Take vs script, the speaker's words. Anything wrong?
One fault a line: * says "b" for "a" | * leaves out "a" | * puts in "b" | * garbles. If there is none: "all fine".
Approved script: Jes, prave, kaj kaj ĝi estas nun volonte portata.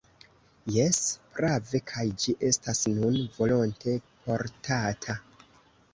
* leaves out "kaj"